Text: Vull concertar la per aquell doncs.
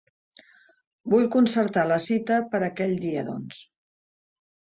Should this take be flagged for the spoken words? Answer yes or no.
yes